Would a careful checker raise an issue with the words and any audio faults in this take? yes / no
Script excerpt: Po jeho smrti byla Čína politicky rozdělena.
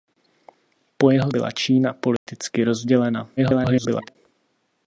yes